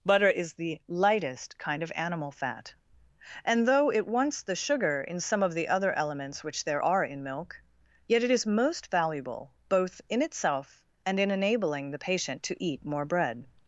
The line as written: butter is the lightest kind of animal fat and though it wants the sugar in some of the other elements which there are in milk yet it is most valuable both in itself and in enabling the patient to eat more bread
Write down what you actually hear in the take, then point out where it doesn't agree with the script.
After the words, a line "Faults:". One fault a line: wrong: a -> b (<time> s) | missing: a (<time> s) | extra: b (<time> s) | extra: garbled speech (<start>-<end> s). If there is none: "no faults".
butter is the lightest kind of animal fat and though it wants the sugar in some of the other elements which there are in milk yet it is most valuable both in itself and in enabling the patient to eat more bread
Faults:
no faults